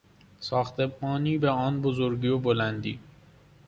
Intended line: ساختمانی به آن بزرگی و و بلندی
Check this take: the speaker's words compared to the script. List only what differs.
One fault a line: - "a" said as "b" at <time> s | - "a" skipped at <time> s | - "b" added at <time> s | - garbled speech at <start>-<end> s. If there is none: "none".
- "و" skipped at 2.4 s